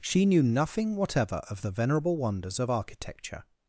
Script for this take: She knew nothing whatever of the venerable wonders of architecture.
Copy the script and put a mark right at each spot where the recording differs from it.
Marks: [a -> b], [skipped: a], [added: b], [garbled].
She knew nothing whatever of the venerable wonders of architecture.